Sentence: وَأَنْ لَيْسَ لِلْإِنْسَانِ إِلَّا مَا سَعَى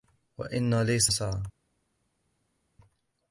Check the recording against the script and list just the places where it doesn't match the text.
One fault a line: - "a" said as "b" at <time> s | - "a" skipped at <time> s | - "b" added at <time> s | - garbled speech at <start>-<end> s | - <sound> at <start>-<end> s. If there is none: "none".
- "لِلْإِنْسَانِ إِلَّا مَا" skipped at 1.1 s